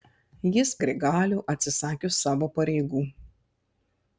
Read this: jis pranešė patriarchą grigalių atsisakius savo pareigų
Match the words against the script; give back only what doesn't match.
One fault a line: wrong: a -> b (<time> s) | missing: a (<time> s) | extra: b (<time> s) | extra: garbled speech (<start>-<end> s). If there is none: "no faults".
missing: pranešė patriarchą (0.7 s)